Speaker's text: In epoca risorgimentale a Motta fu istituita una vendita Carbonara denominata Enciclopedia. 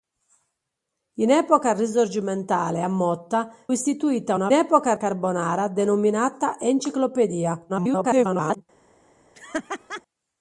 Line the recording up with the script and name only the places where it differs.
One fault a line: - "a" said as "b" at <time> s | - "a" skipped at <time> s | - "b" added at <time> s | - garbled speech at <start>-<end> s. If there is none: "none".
- "fu" skipped at 3.5 s
- "vendita" said as "epoca" at 4.5 s
- garbled speech at 7.7-8.6 s